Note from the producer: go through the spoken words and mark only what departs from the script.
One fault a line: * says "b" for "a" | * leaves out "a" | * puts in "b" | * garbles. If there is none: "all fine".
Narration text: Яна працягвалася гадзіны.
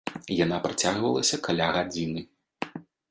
* puts in "каля"